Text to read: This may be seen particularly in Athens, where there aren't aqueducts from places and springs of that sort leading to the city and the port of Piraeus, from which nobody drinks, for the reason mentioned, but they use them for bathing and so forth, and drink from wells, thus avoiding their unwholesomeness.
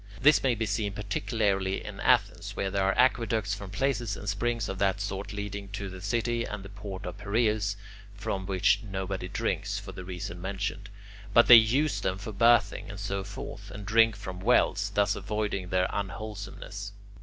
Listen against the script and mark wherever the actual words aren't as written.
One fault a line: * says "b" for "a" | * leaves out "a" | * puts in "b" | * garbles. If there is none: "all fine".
* says "are" for "aren't"